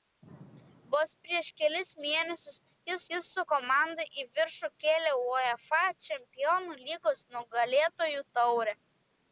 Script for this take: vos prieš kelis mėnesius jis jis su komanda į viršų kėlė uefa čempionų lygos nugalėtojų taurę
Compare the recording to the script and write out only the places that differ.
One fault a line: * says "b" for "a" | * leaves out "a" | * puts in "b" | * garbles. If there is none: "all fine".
all fine